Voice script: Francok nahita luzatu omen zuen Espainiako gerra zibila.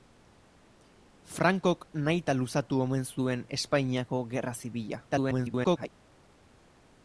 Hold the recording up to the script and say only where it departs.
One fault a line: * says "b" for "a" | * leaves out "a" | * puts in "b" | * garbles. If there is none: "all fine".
* garbles